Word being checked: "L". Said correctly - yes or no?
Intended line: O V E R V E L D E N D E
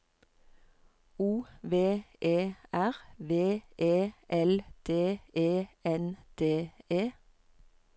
yes